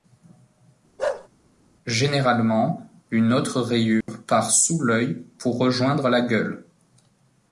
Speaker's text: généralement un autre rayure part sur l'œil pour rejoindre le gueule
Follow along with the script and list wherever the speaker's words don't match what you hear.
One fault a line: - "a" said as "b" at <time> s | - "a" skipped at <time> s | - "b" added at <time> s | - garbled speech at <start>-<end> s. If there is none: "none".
- "un" said as "une" at 3.1 s
- "sur" said as "sous" at 4.5 s
- "le" said as "la" at 6.1 s